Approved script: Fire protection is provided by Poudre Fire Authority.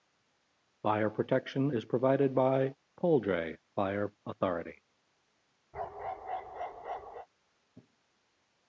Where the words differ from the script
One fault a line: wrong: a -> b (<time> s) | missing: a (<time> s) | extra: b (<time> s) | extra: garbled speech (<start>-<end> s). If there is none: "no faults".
no faults